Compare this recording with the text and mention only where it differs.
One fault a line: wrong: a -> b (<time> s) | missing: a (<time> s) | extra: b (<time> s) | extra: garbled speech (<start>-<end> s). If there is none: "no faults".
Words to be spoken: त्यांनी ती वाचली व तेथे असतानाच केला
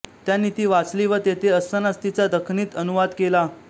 extra: तिचा दखनीत अनुवाद (2.0 s)